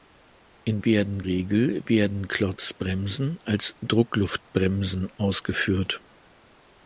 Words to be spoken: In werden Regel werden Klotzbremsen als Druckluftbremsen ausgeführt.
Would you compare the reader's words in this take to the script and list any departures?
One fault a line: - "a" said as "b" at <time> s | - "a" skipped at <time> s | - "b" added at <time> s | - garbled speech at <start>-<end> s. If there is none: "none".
none